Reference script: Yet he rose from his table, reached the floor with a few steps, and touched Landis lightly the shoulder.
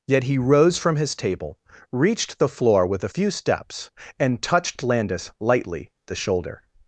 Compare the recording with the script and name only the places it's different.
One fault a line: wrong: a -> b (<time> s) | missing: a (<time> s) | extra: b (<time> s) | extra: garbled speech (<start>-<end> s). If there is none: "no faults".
no faults